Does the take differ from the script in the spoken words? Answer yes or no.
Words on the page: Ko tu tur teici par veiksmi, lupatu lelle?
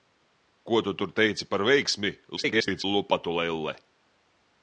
yes